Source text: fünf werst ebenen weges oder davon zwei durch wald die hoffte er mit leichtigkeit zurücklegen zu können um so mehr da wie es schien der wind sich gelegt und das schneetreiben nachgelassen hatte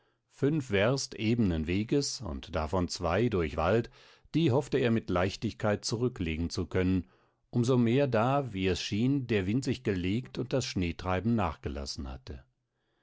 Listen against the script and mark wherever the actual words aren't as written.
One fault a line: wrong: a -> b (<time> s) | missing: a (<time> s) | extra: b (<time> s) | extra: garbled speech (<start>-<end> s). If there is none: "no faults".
wrong: oder -> und (2.2 s)